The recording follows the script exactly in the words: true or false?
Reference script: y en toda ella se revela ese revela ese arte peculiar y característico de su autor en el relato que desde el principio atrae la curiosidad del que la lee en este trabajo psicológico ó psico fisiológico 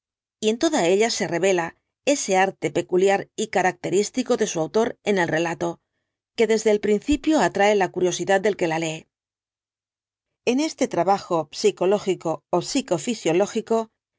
false